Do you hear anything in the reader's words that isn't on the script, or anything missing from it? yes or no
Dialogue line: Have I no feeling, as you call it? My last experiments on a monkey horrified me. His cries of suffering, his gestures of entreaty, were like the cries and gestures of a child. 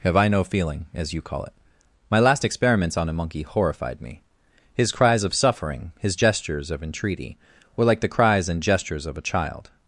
no